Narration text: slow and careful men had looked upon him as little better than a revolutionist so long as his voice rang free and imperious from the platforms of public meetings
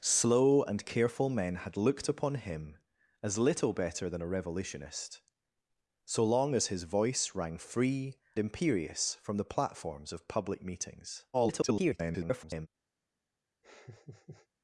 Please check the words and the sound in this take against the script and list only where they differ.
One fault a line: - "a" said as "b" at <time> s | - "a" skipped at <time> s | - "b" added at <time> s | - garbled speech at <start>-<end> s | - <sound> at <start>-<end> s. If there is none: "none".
- "and" skipped at 8.2 s
- garbled speech at 11.3-12.7 s
- laugh at 13.6-14.5 s